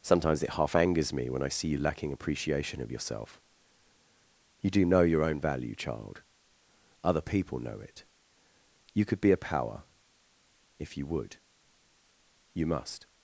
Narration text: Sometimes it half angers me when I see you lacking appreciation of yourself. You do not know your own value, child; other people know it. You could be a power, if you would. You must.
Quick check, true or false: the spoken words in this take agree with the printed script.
false